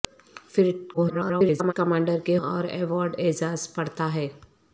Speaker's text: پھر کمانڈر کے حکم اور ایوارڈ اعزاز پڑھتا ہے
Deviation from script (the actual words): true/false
true